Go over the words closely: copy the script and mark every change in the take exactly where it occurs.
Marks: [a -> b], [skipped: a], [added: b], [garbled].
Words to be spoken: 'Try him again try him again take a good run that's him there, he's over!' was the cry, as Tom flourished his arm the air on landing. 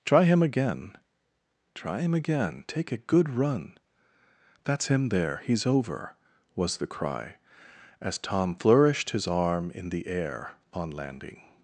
'Try him again try him again take a good run that's him there, he's over!' was the cry, as Tom flourished his arm [added: in] the air on landing.